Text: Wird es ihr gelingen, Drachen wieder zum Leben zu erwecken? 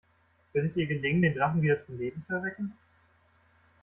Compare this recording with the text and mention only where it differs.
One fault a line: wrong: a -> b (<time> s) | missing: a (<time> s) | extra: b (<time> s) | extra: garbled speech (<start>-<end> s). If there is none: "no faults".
extra: den (1.2 s)